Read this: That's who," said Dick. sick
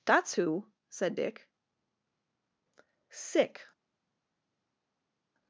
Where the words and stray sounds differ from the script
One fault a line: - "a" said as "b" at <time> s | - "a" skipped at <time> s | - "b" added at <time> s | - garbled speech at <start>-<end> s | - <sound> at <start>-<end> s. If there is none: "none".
none